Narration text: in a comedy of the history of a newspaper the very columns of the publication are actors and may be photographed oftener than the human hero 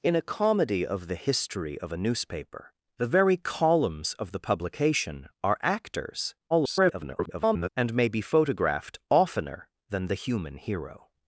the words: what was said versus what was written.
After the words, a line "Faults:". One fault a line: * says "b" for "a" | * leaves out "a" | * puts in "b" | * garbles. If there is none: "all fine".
in a comedy of the history of a newspaper the very columns of the publication are actors [garbled] and may be photographed oftener than the human hero
Faults:
* garbles